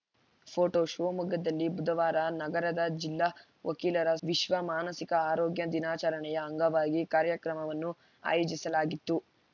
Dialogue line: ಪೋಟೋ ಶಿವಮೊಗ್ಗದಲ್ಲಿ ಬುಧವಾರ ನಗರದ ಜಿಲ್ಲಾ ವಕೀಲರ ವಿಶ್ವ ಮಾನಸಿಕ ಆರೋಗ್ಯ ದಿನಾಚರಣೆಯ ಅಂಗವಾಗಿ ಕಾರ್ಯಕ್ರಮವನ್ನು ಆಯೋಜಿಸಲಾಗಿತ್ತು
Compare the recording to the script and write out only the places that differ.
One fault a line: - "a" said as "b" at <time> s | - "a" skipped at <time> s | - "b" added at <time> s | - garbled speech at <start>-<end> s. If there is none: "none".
none